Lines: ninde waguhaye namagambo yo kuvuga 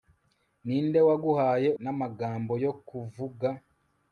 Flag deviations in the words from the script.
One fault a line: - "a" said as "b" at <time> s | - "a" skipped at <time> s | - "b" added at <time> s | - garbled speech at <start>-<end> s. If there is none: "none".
none